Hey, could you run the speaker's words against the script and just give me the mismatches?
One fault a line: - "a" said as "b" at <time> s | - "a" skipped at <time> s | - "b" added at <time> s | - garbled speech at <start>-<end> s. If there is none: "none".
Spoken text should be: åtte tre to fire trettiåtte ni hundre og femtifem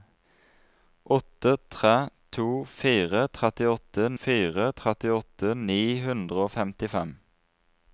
- "fire trettiåtte" added at 4.2 s